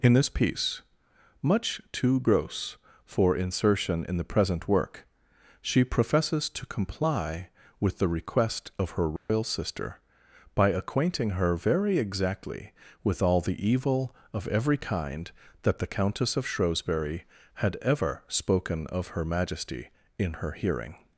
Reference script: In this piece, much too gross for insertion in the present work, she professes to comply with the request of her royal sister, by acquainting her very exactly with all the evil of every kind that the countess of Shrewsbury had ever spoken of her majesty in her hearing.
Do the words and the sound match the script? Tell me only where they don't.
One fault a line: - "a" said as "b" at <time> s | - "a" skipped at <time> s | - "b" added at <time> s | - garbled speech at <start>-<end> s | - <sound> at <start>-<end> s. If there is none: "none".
- dropout at 9.2-9.3 s